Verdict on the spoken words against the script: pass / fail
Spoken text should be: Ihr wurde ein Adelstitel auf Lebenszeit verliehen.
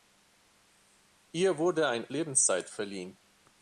fail